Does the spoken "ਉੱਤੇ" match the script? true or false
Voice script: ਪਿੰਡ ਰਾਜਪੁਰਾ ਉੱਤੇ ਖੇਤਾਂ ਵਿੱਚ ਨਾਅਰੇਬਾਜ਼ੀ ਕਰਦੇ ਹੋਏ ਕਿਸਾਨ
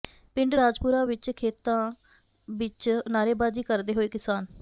false